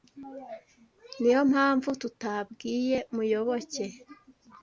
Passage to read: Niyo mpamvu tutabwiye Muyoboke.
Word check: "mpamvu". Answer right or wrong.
right